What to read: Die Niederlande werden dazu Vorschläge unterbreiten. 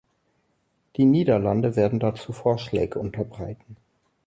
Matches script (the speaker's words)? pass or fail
pass